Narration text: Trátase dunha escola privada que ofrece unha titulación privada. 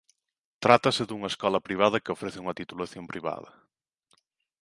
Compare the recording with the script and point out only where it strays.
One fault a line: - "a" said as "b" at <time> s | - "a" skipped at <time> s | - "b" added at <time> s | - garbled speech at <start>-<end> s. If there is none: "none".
none